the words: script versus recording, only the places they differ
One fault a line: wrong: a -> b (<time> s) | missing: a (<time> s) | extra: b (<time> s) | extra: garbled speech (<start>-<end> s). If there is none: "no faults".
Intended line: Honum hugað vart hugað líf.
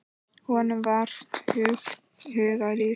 wrong: hugað -> var (0.8 s)